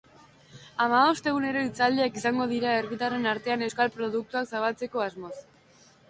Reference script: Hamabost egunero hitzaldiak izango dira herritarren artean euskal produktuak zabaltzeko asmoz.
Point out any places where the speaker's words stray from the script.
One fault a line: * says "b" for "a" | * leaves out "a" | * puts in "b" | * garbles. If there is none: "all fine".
all fine